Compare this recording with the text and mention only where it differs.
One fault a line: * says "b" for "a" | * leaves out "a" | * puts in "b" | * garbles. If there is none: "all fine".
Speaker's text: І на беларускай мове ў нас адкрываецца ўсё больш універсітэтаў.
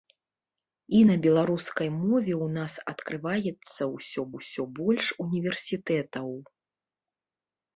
* puts in "ўсё"